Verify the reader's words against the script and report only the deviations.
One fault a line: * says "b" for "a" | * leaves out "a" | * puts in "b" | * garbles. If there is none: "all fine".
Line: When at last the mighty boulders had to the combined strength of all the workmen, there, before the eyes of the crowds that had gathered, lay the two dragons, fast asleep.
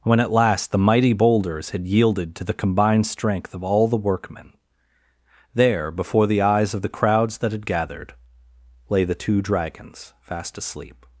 * puts in "yielded"